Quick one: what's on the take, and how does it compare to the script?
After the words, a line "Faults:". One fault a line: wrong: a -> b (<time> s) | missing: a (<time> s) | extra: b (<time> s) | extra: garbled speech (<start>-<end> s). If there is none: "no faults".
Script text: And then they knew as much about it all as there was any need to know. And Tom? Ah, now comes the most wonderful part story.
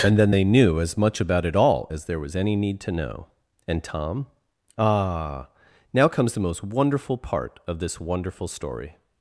And then they knew as much about it all as there was any need to know. And Tom? Ah, now comes the most wonderful part of this wonderful story.
Faults:
extra: of this wonderful (7.7 s)